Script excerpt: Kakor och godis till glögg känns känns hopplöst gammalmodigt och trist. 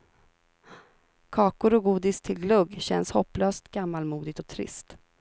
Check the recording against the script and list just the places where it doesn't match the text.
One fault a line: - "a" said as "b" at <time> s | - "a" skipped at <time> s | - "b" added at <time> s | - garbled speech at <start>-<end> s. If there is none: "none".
- "känns" skipped at 3.1 s